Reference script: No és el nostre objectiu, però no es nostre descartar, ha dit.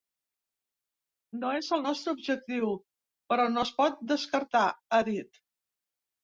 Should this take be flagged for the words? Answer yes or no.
yes